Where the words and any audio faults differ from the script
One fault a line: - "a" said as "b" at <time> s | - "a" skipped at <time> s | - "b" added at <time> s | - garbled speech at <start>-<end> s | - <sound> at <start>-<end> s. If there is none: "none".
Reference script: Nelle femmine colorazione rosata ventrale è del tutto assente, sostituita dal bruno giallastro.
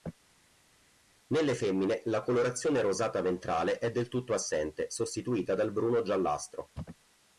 - "la" added at 2.0 s